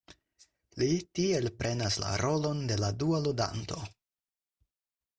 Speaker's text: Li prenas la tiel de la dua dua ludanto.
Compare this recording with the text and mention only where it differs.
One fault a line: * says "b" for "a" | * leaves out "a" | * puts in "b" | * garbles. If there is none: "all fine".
* puts in "tiel"
* says "rolon" for "tiel"
* leaves out "dua"